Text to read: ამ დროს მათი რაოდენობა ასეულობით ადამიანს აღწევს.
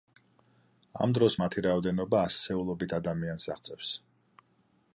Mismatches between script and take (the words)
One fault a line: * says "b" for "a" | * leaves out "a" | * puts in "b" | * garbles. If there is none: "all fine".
all fine